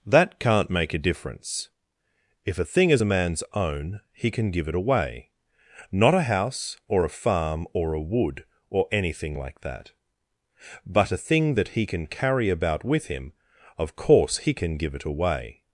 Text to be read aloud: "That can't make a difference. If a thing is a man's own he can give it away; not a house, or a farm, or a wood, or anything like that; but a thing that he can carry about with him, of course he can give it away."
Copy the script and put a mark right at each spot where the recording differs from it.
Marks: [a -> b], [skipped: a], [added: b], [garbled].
"That can't make a difference. If a thing is a man's own he can give it away; not a house, or a farm, or a wood, or anything like that; but a thing that he can carry about with him, of course he can give it away."